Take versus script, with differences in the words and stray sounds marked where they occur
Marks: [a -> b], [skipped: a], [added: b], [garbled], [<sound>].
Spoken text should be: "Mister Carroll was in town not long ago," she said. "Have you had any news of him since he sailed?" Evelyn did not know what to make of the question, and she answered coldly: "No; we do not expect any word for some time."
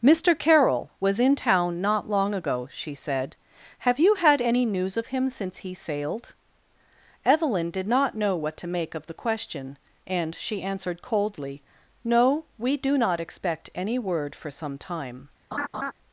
"Mister Carroll was in town not long ago," she said. "Have you had any news of him since he sailed?" Evelyn did not know what to make of the question, and she answered coldly: "No; we do not expect any word for some time." [laugh]